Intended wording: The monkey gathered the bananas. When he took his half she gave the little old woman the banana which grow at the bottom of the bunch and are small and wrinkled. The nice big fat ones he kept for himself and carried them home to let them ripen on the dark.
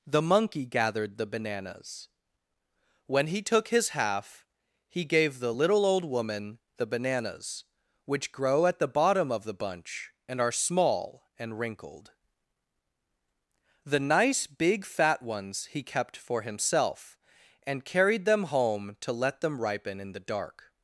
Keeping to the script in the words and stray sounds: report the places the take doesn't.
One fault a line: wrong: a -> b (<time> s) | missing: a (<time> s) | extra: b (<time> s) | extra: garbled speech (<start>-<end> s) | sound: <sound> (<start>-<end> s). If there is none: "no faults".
wrong: she -> he (4.9 s)
wrong: banana -> bananas (6.9 s)
wrong: on -> in (20.0 s)